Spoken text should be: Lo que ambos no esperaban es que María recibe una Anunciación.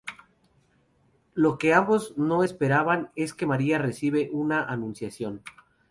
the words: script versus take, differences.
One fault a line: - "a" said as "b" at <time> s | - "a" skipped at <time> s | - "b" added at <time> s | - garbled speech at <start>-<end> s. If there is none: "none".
none